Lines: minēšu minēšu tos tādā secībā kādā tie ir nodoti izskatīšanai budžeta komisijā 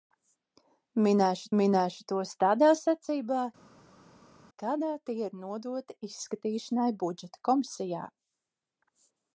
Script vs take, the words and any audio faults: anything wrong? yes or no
no